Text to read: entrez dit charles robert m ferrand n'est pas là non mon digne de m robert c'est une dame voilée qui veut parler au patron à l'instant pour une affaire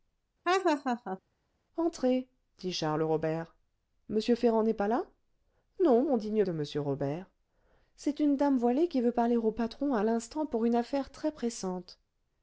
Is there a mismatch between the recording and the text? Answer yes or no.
no